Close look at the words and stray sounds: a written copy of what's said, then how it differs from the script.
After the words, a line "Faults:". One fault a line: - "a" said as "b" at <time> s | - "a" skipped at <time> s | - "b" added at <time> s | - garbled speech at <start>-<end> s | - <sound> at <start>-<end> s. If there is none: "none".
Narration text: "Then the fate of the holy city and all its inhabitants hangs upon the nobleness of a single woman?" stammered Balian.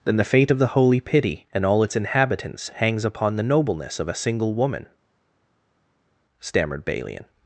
"Then the fate of the holy pity and all its inhabitants hangs upon the nobleness of a single woman?" stammered Balian.
Faults:
- "city" said as "pity" at 1.0 s